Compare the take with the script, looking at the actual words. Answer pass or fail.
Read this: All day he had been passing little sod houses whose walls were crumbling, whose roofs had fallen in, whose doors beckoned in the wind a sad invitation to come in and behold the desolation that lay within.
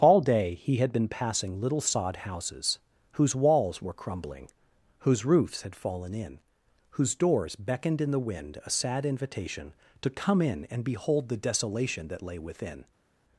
pass